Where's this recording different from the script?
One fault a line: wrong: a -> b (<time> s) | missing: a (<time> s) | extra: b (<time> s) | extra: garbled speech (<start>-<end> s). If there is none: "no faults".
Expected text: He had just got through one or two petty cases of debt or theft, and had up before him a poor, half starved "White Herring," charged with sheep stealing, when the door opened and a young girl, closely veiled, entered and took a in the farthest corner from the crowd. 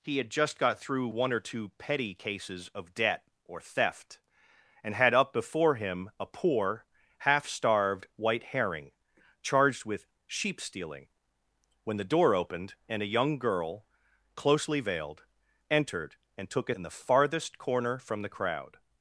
no faults